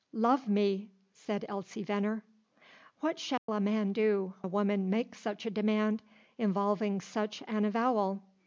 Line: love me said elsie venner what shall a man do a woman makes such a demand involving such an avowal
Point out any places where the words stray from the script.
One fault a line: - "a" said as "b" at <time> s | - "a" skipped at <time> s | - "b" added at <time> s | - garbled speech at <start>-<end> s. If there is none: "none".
none